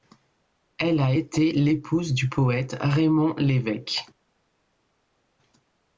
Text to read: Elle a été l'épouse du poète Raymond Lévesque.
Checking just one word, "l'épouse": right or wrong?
right